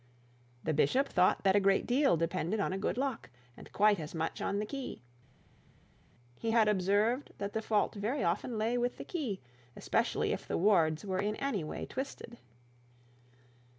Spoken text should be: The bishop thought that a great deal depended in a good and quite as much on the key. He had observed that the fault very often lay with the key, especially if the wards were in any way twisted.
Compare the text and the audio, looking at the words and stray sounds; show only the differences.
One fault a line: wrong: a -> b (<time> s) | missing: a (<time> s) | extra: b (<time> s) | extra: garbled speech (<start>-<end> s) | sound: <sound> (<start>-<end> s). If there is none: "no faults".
wrong: in -> on (2.6 s)
extra: lock (3.0 s)